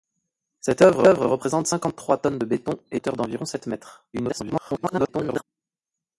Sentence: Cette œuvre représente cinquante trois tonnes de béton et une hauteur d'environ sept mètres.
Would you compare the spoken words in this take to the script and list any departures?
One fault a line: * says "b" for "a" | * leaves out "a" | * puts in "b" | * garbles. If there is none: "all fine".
* puts in "œuvre"
* leaves out "une"
* garbles